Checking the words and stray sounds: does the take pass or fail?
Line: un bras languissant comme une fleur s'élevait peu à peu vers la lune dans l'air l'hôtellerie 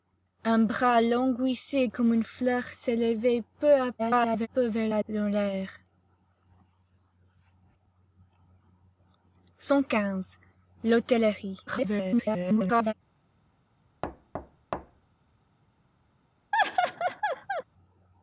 fail